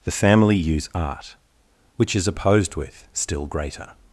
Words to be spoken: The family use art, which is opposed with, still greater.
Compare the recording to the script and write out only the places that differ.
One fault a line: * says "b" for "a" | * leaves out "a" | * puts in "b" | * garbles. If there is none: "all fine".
all fine